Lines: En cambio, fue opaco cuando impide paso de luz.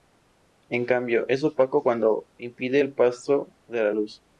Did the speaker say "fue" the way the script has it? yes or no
no